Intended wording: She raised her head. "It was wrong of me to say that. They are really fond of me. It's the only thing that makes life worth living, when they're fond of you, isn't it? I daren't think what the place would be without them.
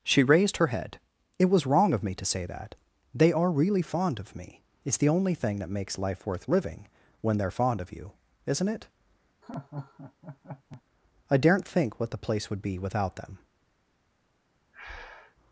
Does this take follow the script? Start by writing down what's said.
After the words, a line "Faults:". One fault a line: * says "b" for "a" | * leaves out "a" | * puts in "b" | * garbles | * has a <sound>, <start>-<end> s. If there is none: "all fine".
She raised her head. "It was wrong of me to say that. They are really fond of me. It's the only thing that makes life worth living, when they're fond of you, isn't it? I daren't think what the place would be without them.
Faults:
* has a laugh, 9.4-10.8 s
* has a breath, 14.7-15.4 s